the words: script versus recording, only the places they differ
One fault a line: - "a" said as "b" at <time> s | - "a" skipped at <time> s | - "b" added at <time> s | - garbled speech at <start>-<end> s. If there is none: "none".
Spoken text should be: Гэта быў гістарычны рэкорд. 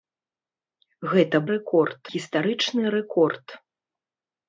- "быў" said as "рэкорд" at 1.6 s